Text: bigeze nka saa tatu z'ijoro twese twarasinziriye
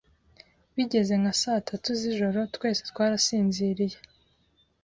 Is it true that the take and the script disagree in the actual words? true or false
false